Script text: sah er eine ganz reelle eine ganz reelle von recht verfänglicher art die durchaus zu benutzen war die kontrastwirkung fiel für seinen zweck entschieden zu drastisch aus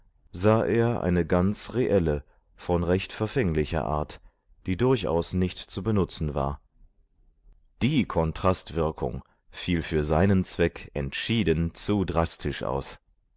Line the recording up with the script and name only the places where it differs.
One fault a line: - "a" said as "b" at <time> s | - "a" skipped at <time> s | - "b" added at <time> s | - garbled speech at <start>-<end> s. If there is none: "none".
- "eine ganz reelle" skipped at 2.2 s
- "nicht" added at 5.3 s